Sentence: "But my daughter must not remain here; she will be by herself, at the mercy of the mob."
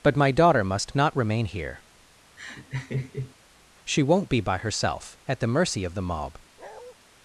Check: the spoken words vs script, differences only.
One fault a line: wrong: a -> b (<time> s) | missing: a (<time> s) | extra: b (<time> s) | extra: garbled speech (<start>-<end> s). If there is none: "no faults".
wrong: will -> won't (4.0 s)